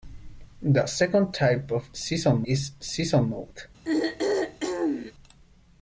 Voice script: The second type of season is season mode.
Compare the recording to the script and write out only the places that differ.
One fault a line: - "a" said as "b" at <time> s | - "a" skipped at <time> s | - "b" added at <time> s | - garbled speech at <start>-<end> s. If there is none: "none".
none